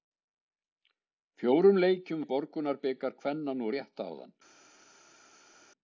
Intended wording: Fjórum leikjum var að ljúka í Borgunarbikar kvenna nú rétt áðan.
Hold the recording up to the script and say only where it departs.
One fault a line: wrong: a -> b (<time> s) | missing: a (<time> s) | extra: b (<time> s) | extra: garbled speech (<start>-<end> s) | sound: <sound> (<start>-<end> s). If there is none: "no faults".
missing: var að ljúka (2.2 s)